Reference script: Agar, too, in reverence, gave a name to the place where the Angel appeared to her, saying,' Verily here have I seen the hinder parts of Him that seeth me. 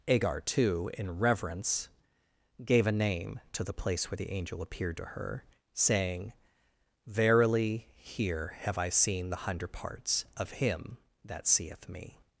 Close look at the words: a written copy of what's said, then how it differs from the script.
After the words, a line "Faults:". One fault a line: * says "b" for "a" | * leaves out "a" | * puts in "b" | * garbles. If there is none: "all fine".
Agar, too, in reverence, gave a name to the place where the Angel appeared to her, saying,' Verily here have I seen the hundred parts of Him that seeth me.
Faults:
* says "hundred" for "hinder"